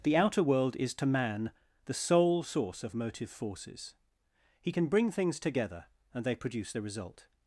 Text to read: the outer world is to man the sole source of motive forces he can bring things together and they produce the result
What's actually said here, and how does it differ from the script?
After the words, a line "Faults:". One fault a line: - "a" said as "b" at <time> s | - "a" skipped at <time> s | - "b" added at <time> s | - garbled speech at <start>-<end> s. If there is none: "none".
the outer world is to man the sole source of motive forces he can bring things together and they produce the result
Faults:
none